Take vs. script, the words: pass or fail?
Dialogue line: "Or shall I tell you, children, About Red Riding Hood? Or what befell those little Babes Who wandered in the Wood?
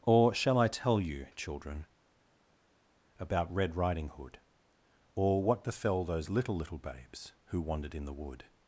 fail